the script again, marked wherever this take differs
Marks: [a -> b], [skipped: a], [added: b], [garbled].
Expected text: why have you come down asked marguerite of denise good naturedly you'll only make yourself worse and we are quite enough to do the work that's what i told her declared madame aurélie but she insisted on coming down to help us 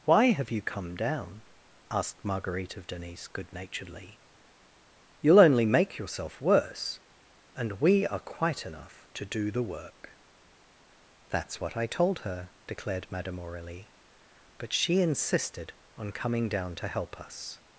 why have you come down asked marguerite of denise good naturedly you'll only make yourself worse and we are quite enough to do the work that's what i told her declared madame aurélie but she insisted on coming down to help us